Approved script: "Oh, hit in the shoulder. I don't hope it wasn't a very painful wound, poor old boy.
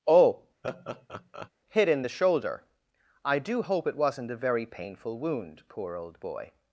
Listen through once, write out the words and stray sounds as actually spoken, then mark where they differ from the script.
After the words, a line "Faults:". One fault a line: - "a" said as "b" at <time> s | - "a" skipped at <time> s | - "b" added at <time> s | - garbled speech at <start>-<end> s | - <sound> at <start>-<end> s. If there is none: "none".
"Oh, hit in the shoulder. I do hope it wasn't a very painful wound, poor old boy.
Faults:
- laugh at 0.6-1.5 s
- "don't" said as "do" at 3.4 s